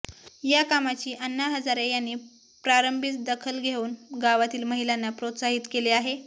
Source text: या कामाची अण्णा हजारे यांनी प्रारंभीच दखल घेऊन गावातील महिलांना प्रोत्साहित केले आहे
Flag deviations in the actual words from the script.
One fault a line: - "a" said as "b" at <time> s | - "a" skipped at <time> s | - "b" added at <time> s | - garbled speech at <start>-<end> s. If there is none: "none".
none